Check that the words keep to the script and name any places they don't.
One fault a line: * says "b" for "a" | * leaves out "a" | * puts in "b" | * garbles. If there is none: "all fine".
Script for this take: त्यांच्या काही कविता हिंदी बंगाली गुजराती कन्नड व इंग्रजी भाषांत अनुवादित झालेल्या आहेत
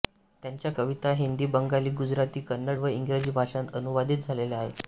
* leaves out "काही"